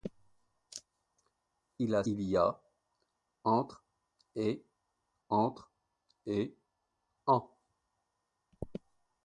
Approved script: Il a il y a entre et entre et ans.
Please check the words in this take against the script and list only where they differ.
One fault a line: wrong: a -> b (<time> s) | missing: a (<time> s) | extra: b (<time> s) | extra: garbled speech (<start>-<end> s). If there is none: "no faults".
no faults